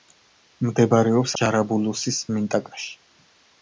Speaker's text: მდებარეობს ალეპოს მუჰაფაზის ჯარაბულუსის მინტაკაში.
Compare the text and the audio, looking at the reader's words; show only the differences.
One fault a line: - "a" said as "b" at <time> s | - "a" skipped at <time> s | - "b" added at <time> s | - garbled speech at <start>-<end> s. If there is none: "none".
- "ალეპოს მუჰაფაზის" skipped at 1.4 s